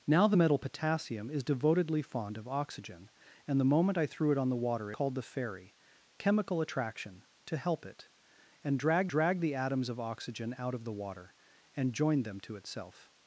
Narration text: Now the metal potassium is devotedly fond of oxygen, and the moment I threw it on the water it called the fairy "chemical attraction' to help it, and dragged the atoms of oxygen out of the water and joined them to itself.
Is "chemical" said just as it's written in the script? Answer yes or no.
yes